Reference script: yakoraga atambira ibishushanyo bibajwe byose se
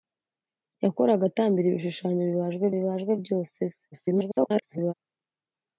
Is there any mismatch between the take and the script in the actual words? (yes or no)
yes